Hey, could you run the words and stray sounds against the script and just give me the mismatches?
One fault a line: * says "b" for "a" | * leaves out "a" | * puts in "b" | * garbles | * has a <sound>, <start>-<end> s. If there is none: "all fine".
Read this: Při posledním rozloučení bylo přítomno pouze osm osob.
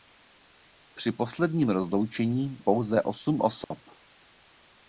* leaves out "bylo přítomno"
* has a dropout, 3.6-3.7 s